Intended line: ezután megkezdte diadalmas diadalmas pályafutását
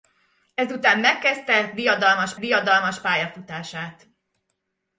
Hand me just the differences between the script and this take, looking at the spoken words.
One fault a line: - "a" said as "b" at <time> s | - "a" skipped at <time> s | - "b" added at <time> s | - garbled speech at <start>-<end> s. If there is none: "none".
none